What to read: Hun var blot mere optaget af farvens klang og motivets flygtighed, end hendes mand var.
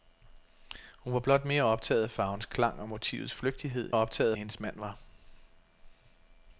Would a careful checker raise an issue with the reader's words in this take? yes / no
yes